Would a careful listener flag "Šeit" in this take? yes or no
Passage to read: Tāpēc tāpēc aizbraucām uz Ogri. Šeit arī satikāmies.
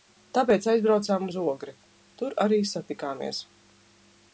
yes